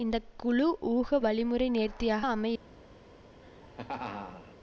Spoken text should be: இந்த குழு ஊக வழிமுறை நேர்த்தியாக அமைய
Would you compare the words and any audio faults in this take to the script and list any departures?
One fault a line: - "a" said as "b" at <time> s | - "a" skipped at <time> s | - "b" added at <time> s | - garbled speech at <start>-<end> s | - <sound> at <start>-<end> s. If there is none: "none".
- laugh at 3.4-4.6 s